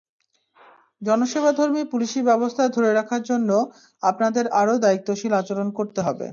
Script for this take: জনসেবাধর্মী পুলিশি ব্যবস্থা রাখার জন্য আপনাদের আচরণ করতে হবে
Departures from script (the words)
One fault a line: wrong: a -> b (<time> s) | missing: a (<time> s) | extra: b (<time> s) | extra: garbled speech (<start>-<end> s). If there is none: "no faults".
extra: ধরে (2.7 s)
extra: আরও দায়িত্বশীল (4.6 s)